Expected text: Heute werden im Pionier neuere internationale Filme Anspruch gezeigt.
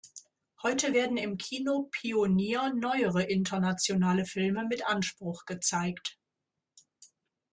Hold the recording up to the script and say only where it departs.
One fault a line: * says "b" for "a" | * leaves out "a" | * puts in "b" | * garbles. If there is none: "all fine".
* puts in "Kino"
* puts in "mit"